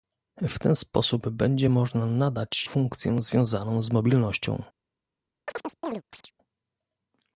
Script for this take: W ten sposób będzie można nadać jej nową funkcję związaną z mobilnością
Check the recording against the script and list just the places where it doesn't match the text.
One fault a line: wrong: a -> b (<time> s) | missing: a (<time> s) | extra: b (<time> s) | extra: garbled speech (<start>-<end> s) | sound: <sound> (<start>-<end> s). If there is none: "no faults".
missing: jej nową (2.7 s)
sound: chirp (5.5-6.3 s)